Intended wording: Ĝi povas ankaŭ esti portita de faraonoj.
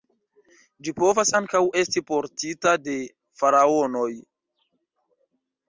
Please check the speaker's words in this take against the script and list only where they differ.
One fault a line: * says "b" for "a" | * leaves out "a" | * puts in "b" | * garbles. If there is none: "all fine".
all fine